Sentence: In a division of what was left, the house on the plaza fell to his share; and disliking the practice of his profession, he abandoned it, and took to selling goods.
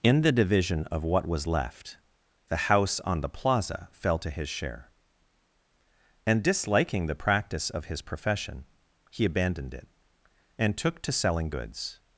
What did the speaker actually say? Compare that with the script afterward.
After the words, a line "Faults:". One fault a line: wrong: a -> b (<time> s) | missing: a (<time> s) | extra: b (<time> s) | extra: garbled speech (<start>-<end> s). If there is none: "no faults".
In the division of what was left, the house on the plaza fell to his share; and disliking the practice of his profession, he abandoned it, and took to selling goods.
Faults:
wrong: a -> the (0.2 s)